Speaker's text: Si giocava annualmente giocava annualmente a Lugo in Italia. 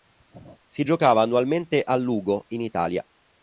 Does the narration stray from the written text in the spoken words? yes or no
yes